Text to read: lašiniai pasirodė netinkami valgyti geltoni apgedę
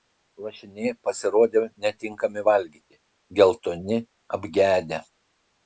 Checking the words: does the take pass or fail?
pass